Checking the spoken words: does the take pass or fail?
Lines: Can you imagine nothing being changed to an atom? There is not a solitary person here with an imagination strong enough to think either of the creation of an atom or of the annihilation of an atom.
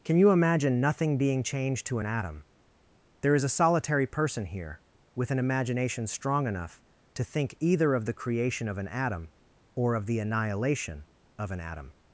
fail